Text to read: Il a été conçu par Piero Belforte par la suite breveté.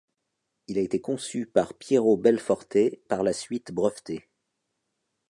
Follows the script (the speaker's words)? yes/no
yes